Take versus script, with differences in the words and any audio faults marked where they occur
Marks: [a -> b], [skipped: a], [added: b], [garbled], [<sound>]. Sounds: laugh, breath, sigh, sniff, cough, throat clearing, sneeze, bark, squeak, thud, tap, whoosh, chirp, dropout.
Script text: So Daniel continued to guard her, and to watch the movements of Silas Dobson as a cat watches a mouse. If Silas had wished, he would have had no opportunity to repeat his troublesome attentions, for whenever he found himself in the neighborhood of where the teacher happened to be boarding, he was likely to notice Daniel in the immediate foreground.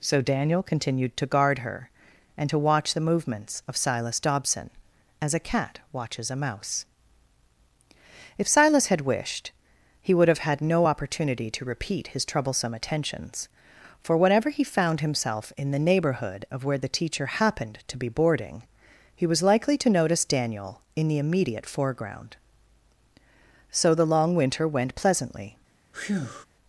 So Daniel continued to guard her, and to watch the movements of Silas Dobson as a cat watches a mouse. If Silas had wished, he would have had no opportunity to repeat his troublesome attentions, for whenever he found himself in the neighborhood of where the teacher happened to be boarding, he was likely to notice Daniel in the immediate foreground. [added: So the long winter went pleasantly] [breath]